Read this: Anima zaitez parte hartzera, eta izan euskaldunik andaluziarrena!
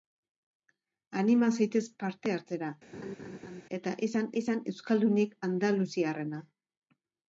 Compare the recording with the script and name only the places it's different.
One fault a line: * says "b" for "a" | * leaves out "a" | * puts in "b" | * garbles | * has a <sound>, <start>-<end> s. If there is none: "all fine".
* has a laugh, 2.9-3.6 s
* puts in "izan"